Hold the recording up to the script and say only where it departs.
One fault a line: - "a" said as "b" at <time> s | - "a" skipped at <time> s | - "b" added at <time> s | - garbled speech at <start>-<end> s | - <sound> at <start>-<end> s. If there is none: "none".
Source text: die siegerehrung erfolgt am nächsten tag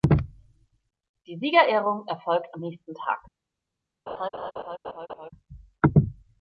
- laugh at 4.1-5.3 s